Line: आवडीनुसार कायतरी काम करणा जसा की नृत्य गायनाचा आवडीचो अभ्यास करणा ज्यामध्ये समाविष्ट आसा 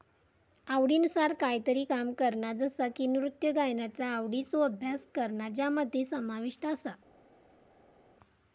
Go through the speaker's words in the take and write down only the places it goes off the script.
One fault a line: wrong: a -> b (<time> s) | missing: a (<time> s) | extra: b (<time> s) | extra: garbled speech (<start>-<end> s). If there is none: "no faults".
no faults